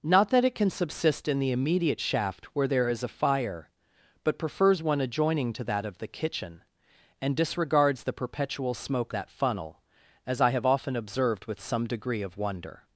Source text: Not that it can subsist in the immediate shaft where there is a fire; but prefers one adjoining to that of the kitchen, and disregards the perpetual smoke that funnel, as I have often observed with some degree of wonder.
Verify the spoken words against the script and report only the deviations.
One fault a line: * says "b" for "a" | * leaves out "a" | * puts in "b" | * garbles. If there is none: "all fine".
all fine